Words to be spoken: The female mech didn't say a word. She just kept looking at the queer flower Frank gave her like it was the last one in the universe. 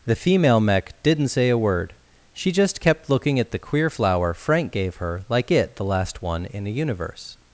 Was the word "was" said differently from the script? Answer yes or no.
yes